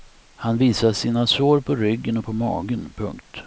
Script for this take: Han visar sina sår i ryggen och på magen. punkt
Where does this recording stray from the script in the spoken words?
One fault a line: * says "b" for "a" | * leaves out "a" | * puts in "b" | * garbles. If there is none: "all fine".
* says "på" for "i"